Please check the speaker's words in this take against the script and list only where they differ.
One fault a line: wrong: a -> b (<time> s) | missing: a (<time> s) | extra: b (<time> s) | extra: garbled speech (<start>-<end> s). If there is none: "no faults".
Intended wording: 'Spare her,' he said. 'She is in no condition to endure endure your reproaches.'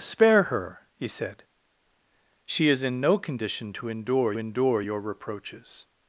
no faults